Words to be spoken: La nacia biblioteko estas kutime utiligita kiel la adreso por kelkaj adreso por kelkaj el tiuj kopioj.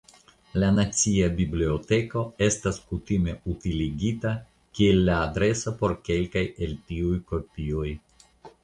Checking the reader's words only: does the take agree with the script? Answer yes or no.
no